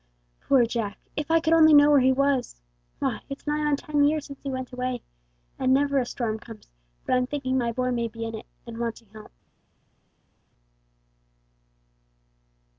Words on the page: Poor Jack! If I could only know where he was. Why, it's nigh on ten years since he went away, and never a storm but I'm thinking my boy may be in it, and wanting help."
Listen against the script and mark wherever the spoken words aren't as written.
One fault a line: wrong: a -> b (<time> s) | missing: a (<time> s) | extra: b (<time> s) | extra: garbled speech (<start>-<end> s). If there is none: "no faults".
extra: comes (6.4 s)